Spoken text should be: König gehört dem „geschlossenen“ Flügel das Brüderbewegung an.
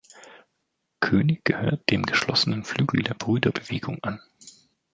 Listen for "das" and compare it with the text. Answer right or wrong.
wrong